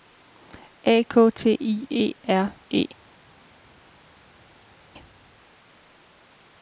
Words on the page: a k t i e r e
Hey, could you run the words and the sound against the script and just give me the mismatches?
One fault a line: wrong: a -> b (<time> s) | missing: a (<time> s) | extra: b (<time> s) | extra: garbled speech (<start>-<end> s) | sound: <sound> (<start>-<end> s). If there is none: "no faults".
no faults